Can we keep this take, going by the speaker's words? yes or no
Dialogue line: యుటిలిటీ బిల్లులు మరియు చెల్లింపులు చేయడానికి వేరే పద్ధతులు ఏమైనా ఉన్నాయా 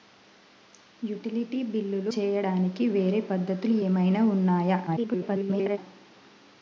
no